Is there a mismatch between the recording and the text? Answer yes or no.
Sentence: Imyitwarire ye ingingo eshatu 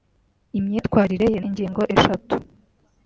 no